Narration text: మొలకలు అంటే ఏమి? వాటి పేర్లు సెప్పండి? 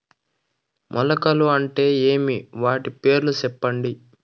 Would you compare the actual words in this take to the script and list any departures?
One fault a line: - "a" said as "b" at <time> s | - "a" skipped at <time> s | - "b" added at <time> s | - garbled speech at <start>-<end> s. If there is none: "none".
none